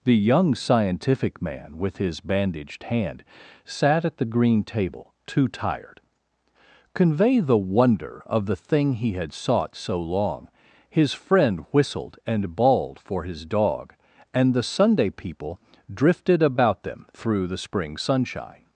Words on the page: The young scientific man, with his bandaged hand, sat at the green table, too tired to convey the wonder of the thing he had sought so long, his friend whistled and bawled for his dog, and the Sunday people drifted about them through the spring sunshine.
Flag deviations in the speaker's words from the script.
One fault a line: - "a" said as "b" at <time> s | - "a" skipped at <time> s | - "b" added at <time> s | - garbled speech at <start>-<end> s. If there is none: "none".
- "to" skipped at 6.0 s